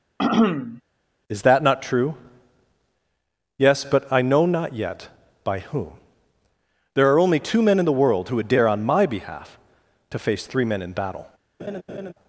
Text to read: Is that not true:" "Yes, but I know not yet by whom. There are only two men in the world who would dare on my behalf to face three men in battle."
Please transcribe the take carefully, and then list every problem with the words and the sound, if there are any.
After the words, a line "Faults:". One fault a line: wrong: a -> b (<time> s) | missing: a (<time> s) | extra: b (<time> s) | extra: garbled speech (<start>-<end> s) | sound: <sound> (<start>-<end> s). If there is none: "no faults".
Is that not true:" "Yes, but I know not yet by whom. There are only two men in the world who would dare on my behalf to face three men in battle."
Faults:
sound: throat clearing (0.2-0.8 s)
sound: laugh (11.6-12.1 s)